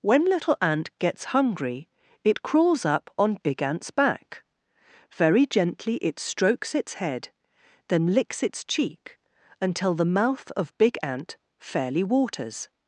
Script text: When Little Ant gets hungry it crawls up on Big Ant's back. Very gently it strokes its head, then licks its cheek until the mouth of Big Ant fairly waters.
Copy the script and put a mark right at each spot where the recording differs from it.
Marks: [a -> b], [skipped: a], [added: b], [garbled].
When Little Ant gets hungry it crawls up on Big Ant's back. Very gently it strokes its head, then licks its cheek until the mouth of Big Ant fairly waters.